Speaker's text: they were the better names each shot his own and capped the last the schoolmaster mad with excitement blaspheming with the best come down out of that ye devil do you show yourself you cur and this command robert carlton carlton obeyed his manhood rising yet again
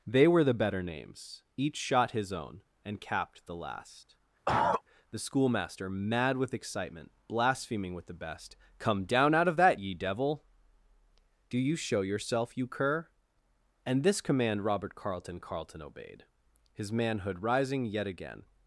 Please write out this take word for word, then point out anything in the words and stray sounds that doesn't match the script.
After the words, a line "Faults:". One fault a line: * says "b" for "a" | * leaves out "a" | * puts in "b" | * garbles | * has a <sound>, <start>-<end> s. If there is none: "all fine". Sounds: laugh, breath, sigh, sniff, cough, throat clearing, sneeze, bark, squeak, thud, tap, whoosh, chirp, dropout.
they were the better names each shot his own and capped the last the schoolmaster mad with excitement blaspheming with the best come down out of that ye devil do you show yourself you cur and this command robert carlton carlton obeyed his manhood rising yet again
Faults:
* has a cough, 4.5-4.8 s